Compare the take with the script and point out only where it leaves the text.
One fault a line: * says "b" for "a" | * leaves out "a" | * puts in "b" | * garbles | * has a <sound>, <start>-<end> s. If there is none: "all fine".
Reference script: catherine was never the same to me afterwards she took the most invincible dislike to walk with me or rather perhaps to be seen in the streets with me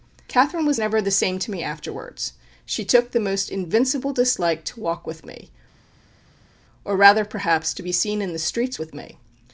all fine